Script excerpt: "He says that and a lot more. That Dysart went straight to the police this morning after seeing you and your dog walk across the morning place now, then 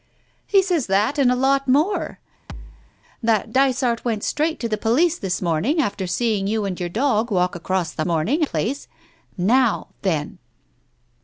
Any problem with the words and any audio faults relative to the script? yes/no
yes